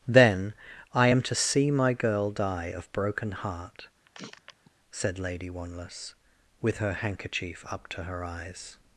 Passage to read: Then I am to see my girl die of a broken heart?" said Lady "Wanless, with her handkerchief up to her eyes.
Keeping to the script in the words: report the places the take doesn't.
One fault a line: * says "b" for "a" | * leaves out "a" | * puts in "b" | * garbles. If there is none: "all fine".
* leaves out "a"